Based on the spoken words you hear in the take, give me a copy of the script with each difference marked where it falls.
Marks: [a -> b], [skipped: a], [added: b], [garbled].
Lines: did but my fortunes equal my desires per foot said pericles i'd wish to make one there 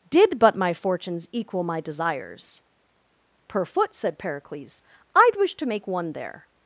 did but my fortunes equal my desires per foot said pericles i'd wish to make one there